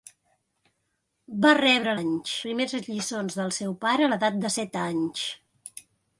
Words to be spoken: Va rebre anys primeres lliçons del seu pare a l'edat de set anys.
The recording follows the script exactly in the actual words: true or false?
true